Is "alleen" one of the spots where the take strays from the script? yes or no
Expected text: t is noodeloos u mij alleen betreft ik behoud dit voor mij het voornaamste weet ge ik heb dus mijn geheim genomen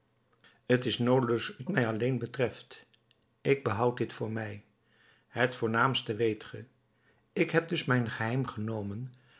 no